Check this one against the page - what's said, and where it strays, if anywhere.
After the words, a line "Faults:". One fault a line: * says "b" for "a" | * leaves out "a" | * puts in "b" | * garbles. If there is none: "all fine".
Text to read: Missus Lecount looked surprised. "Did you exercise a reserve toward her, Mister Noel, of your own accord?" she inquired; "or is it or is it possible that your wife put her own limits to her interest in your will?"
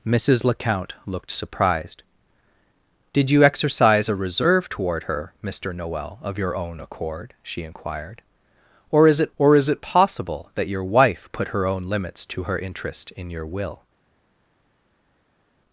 Missus Lecount looked surprised. "Did you exercise a reserve toward her, Mister Noel, of your own accord?" she inquired; "or is it or is it possible that your wife put her own limits to her interest in your will?"
Faults:
all fine